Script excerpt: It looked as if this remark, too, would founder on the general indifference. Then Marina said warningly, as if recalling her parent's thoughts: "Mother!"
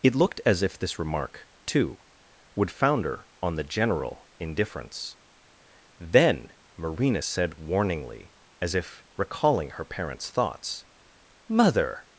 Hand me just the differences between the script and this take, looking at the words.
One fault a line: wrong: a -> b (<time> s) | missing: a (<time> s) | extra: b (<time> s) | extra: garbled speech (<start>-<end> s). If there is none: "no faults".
no faults